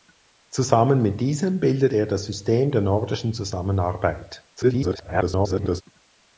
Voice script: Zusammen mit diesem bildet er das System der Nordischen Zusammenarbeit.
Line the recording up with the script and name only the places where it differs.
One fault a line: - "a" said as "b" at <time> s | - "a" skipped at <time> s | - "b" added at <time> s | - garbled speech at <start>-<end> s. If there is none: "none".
- garbled speech at 4.6-5.8 s